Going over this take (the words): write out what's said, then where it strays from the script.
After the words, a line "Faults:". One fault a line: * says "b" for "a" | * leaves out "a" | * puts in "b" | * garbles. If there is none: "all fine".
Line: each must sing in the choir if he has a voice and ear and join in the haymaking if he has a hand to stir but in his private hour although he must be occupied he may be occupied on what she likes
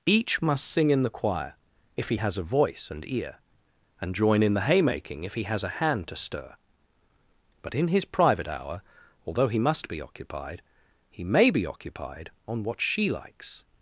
each must sing in the choir if he has a voice and ear and join in the haymaking if he has a hand to stir but in his private hour although he must be occupied he may be occupied on what she likes
Faults:
all fine